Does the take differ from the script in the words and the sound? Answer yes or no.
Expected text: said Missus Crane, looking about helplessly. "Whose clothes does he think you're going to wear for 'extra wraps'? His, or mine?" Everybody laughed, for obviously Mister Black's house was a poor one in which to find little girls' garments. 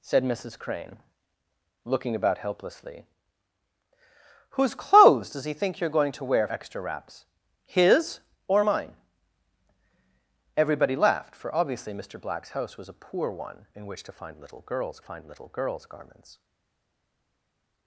yes